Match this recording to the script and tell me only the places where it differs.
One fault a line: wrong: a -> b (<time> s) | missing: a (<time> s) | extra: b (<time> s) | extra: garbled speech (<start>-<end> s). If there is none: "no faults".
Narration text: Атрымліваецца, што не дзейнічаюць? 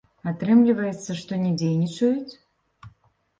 no faults